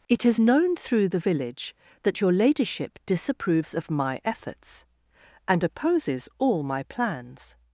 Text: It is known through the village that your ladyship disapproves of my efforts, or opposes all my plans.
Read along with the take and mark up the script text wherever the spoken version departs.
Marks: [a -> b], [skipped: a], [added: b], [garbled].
It is known through the village that your ladyship disapproves of my efforts, [or -> and] opposes all my plans.